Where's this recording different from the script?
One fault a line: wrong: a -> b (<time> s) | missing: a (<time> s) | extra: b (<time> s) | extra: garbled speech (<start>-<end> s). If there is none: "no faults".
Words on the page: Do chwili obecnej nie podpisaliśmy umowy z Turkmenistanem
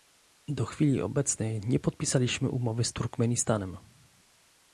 no faults